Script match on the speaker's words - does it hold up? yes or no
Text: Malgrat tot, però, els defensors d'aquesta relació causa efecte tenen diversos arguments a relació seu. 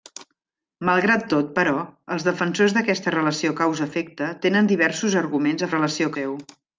yes